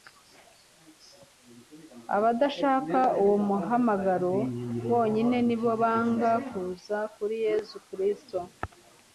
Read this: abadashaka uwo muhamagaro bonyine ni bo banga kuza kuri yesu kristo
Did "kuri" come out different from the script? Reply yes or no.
no